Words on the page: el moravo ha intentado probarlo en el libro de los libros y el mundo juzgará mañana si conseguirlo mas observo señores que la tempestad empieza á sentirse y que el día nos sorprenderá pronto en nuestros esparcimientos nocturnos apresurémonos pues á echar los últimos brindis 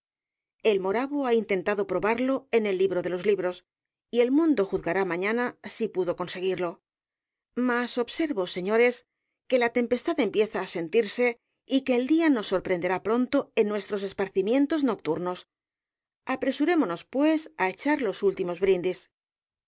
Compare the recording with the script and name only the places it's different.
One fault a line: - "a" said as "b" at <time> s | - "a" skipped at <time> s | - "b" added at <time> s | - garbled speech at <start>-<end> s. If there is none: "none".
- "pudo" added at 6.0 s